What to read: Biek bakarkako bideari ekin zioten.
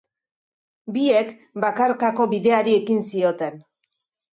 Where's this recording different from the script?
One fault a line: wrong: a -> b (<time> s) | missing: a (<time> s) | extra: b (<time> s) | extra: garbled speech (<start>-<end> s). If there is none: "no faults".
no faults